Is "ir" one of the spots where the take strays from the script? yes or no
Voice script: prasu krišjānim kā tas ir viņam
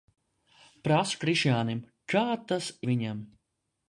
yes